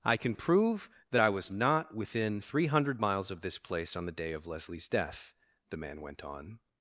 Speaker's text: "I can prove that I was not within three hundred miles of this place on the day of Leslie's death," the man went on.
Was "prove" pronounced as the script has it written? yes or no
yes